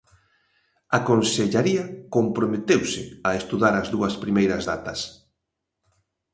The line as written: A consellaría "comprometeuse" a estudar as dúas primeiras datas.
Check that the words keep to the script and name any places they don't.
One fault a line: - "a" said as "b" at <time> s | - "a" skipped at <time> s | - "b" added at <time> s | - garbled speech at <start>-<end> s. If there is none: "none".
none